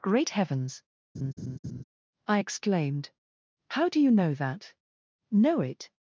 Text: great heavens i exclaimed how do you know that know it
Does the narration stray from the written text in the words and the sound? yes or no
yes